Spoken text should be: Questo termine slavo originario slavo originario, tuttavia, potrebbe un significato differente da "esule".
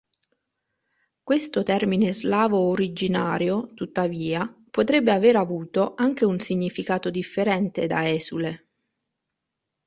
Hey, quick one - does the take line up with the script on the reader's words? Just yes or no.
no